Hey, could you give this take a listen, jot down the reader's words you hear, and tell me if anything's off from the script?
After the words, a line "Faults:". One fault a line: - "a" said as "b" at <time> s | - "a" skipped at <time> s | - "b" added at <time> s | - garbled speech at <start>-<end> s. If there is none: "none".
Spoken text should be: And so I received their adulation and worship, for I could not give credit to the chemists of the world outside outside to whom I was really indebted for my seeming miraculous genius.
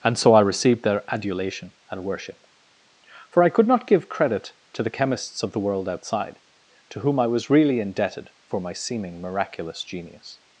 And so I received their adulation and worship, for I could not give credit to the chemists of the world outside to whom I was really indebted for my seeming miraculous genius.
Faults:
- "outside" skipped at 6.4 s